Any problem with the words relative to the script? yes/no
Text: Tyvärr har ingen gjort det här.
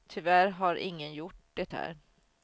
no